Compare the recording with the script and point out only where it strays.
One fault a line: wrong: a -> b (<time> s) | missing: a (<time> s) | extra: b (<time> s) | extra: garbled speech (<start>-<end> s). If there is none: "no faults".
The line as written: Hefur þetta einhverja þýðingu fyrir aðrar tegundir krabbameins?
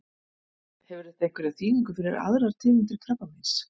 no faults